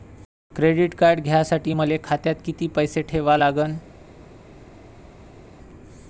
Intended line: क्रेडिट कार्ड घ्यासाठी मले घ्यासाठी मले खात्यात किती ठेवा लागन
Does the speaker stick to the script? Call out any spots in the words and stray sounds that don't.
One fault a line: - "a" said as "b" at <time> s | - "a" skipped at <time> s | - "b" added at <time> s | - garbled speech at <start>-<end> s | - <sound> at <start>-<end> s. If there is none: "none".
- "घ्यासाठी मले" skipped at 2.0 s
- "पैसे" added at 2.7 s